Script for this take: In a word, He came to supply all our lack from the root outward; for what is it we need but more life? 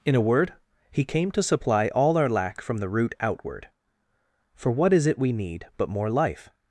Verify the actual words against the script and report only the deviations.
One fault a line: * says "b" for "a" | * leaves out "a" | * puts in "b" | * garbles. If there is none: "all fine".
all fine